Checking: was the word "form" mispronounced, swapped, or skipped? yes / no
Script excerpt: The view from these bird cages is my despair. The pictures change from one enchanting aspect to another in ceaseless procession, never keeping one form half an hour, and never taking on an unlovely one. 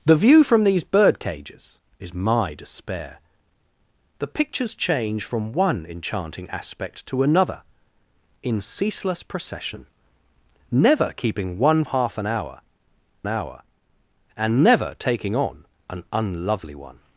yes